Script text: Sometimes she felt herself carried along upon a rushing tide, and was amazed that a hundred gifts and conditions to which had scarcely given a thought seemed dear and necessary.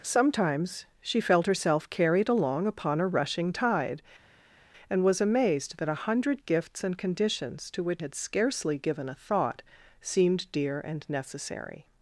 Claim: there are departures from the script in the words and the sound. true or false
false